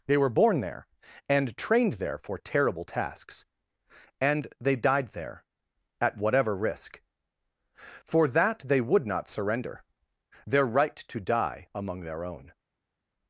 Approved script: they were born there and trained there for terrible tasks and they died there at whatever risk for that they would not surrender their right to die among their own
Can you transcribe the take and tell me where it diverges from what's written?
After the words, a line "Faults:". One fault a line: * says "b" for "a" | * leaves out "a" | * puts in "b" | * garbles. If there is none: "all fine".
they were born there and trained there for terrible tasks and they died there at whatever risk for that they would not surrender their right to die among their own
Faults:
all fine